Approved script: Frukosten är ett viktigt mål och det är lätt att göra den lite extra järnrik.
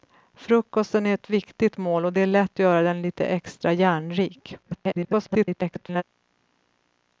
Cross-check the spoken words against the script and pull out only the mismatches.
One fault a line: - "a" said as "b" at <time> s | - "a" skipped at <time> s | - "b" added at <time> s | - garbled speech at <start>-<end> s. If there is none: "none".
- "att" skipped at 2.6 s
- garbled speech at 4.6-6.0 s